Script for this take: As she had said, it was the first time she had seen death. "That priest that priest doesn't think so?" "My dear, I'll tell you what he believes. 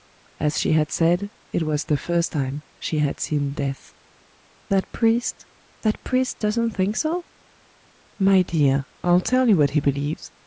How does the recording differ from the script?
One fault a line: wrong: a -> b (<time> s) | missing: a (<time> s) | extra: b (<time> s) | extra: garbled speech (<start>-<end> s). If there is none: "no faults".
no faults